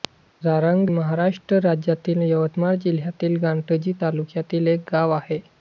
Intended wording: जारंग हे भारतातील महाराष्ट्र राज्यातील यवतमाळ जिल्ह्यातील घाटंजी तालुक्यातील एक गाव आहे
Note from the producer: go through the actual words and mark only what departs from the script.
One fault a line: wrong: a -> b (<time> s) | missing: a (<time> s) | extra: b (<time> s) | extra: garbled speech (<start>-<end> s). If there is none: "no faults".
missing: हे भारतातील (0.9 s)